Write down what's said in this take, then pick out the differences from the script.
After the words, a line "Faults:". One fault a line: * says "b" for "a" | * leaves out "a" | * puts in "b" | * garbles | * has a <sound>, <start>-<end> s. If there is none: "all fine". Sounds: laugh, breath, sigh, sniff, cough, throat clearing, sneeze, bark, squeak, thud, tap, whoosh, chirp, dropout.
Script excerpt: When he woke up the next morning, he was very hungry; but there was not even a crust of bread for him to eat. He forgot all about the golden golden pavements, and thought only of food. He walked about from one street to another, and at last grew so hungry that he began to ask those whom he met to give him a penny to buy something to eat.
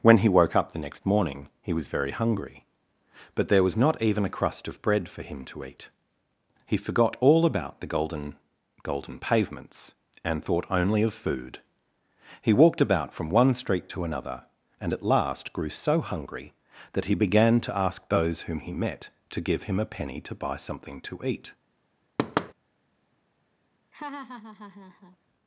When he woke up the next morning, he was very hungry; but there was not even a crust of bread for him to eat. He forgot all about the golden golden pavements, and thought only of food. He walked about from one street to another, and at last grew so hungry that he began to ask those whom he met to give him a penny to buy something to eat.
Faults:
* has a thud, 22.2-22.5 s
* has a laugh, 23.9-25.2 s